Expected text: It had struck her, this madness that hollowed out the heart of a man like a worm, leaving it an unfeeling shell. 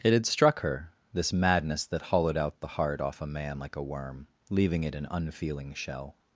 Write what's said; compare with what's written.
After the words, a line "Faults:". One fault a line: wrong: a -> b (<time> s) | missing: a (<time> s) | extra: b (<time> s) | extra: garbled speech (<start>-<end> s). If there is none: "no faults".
It had struck her, this madness that hollowed out the heart off a man like a worm, leaving it an unfeeling shell.
Faults:
wrong: of -> off (3.0 s)